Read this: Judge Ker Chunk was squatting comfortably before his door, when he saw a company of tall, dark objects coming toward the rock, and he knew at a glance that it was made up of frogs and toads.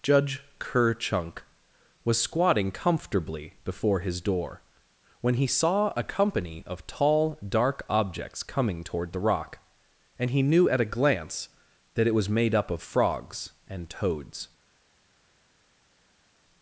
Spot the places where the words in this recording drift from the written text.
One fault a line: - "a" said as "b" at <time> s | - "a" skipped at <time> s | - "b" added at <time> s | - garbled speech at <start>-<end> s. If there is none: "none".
none